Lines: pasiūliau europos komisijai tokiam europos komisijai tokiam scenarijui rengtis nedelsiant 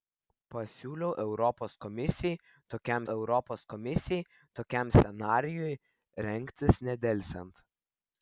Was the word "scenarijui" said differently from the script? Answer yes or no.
no